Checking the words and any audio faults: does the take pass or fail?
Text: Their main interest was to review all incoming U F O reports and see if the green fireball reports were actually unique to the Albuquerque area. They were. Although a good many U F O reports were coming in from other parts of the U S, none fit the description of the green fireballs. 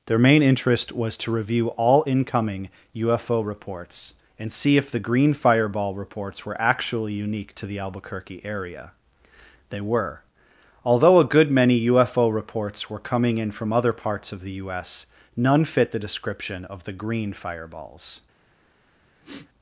fail